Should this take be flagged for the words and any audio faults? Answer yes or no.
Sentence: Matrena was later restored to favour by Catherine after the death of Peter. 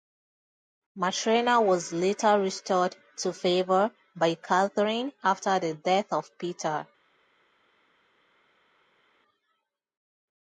no